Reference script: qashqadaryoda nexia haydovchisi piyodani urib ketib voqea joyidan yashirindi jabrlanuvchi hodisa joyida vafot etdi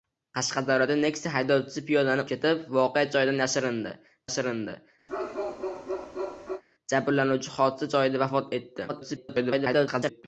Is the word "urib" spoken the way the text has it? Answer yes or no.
no